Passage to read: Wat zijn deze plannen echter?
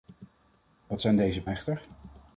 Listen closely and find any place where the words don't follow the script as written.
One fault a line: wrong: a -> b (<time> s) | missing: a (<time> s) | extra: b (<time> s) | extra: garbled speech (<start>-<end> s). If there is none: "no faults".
missing: plannen (1.4 s)